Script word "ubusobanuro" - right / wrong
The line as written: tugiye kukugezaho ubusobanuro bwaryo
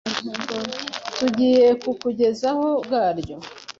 wrong